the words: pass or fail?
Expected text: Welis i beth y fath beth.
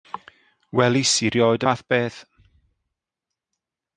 fail